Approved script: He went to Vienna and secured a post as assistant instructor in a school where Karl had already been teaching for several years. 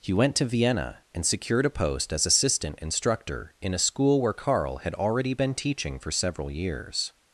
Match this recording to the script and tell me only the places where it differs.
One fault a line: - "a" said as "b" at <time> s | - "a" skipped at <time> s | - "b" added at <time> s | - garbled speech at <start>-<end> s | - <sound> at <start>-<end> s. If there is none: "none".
none